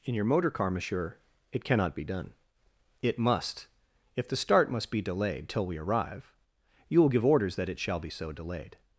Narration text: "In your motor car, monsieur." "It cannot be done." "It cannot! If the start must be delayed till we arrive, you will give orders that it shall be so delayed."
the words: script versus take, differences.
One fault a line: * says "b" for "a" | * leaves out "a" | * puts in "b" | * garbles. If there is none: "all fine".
* says "must" for "cannot"